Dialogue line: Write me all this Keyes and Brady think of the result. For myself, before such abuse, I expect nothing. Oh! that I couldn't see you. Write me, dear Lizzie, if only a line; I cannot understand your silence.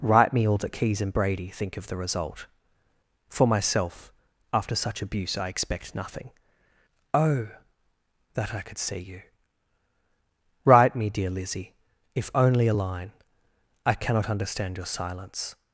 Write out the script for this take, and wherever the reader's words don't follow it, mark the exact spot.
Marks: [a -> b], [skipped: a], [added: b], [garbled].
Write me all [this -> that] Keyes and Brady think of the result. For myself, [before -> after] such abuse, I expect nothing. Oh! that I [couldn't -> could] see you. Write me, dear Lizzie, if only a line; I cannot understand your silence.